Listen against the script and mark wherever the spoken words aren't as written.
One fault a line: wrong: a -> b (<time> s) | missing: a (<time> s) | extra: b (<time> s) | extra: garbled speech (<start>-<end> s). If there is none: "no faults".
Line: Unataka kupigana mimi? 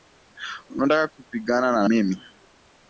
extra: na (1.7 s)